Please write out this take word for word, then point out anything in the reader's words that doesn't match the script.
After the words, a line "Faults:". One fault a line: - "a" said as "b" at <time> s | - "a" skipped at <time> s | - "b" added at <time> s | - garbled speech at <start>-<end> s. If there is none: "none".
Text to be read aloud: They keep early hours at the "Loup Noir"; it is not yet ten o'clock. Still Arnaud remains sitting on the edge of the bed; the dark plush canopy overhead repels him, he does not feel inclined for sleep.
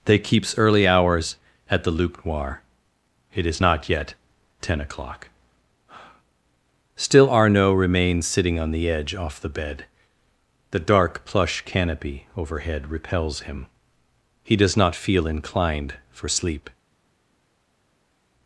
They keeps early hours at the "Loup Noir"; it is not yet ten o'clock. Still Arnaud remains sitting on the edge off the bed; the dark plush canopy overhead repels him, he does not feel inclined for sleep.
Faults:
- "keep" said as "keeps" at 0.2 s
- "of" said as "off" at 9.1 s